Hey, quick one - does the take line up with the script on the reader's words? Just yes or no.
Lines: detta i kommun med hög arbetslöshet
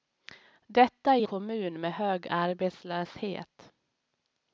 yes